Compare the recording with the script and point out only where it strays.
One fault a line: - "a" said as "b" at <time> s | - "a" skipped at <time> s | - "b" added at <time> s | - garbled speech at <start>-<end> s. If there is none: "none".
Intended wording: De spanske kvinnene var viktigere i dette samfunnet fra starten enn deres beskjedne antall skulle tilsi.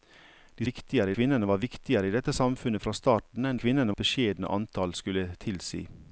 - "spanske" said as "viktigere" at 0.7 s
- "deres" said as "kvinnene" at 3.5 s